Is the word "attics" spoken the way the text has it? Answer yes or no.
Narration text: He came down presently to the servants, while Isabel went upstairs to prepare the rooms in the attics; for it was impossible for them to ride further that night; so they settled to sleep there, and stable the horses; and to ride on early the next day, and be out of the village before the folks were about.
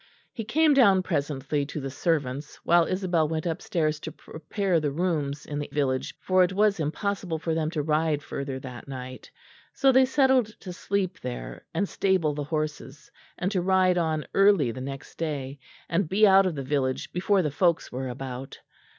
no